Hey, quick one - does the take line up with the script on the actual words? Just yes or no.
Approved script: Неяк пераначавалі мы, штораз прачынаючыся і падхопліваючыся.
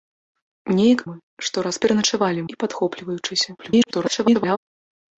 no